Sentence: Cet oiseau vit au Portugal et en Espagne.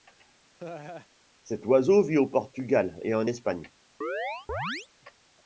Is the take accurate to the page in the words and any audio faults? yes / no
no